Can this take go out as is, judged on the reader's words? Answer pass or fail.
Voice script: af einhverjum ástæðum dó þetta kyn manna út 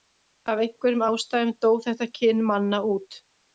pass